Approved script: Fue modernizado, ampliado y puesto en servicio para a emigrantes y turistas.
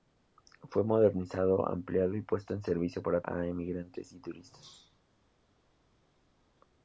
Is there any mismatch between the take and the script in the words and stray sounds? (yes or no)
no